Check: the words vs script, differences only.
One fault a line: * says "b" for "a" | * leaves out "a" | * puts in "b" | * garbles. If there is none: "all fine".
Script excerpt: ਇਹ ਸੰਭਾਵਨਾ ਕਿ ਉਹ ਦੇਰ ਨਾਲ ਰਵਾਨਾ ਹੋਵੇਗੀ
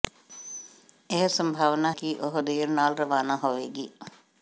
all fine